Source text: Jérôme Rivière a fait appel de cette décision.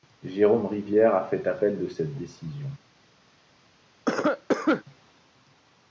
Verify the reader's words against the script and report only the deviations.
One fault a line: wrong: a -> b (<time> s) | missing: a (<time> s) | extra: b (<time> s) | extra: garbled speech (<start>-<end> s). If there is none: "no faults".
no faults